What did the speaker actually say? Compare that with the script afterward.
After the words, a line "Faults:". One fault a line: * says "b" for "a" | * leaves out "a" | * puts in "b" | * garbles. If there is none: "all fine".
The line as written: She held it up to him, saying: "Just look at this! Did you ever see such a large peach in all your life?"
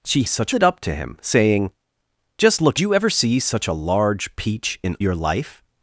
She such it up to him, saying: "Just look you ever see such a large peach in your life?"
Faults:
* says "such" for "held"
* leaves out "at this Did"
* leaves out "all"